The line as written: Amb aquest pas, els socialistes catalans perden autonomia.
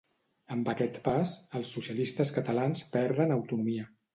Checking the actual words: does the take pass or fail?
pass